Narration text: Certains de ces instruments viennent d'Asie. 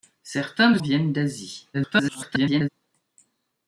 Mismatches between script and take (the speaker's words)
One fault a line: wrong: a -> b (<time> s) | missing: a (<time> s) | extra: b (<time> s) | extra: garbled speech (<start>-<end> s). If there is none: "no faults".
missing: ces instruments (0.8 s)
extra: garbled speech (1.7-2.7 s)